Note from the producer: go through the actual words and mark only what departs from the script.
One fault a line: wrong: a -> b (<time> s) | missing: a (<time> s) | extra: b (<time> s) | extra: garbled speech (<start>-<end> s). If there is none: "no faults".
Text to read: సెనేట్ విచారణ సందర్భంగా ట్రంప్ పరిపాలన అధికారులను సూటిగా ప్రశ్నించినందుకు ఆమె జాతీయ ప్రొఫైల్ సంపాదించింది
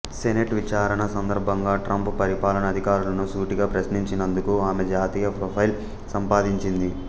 no faults